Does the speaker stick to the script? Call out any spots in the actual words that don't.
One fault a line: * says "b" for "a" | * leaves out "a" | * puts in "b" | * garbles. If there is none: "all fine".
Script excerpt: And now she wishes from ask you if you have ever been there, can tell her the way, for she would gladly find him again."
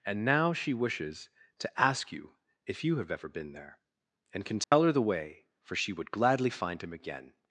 * says "to" for "from"
* puts in "and"